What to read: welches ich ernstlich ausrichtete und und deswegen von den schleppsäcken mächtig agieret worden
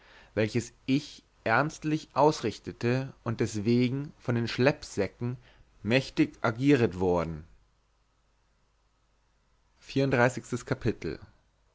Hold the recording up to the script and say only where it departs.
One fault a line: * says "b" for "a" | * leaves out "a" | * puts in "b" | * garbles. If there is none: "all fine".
* leaves out "und"